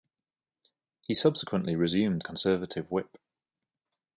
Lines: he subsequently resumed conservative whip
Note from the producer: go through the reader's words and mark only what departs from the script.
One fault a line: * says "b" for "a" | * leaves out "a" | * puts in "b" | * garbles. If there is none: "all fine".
all fine